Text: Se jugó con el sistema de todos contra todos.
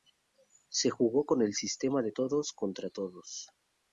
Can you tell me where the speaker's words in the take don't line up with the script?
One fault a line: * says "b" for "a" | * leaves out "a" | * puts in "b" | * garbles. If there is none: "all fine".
all fine